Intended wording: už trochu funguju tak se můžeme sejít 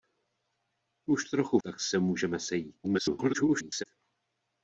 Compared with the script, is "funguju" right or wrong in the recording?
wrong